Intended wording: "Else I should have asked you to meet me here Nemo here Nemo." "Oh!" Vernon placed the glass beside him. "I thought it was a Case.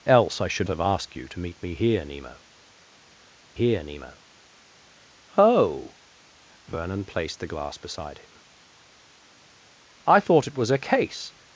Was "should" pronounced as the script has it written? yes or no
yes